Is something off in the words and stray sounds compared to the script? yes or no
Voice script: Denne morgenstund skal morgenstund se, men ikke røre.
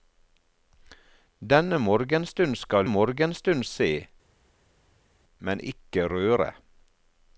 no